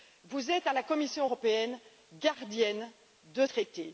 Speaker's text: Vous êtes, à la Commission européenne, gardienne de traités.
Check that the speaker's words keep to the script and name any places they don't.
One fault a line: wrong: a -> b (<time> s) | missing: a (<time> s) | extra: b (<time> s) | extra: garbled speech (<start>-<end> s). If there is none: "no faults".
no faults